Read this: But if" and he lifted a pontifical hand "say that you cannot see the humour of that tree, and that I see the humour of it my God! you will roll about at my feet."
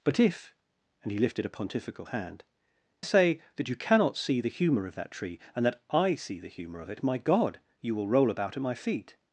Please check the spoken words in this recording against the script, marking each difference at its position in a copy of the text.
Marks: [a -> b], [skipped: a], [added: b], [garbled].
But if" and he lifted a pontifical hand "say that you cannot see the humour of that tree, and that I see the humour of it my God! you will roll about at my feet."